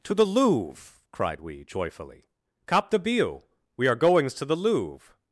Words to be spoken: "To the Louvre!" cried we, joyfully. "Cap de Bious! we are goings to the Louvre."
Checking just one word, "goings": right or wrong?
right